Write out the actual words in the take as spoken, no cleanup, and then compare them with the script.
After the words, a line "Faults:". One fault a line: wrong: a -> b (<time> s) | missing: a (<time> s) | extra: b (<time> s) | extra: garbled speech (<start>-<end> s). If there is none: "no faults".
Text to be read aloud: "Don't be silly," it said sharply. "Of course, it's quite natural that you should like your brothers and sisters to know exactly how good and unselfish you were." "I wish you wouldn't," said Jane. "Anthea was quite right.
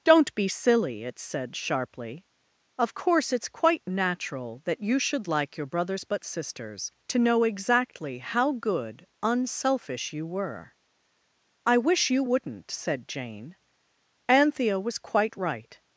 "Don't be silly," it said sharply. "Of course, it's quite natural that you should like your brothers but sisters to know exactly how good unselfish you were." "I wish you wouldn't," said Jane. "Anthea was quite right.
Faults:
wrong: and -> but (6.0 s)
missing: and (9.1 s)